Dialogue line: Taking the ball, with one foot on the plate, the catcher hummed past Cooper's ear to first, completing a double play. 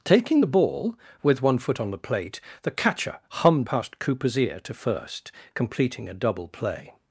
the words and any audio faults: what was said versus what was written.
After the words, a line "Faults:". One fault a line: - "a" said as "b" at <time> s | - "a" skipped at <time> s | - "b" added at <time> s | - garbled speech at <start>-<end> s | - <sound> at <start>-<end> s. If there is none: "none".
Taking the ball, with one foot on the plate, the catcher hummed past Cooper's ear to first, completing a double play.
Faults:
none